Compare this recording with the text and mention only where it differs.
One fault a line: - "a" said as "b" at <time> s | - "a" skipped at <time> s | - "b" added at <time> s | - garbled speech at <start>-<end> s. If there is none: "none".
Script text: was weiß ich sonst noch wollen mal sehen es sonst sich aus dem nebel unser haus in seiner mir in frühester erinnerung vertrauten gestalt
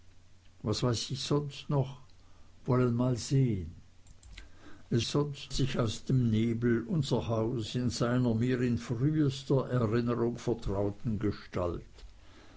none